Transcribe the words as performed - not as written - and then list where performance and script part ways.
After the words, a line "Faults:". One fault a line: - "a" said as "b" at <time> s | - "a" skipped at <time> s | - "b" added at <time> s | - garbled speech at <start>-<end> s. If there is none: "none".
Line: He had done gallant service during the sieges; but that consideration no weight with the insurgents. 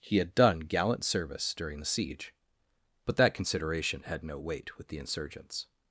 He had done gallant service during the siege; but that consideration had no weight with the insurgents.
Faults:
- "sieges" said as "siege" at 1.9 s
- "had" added at 4.0 s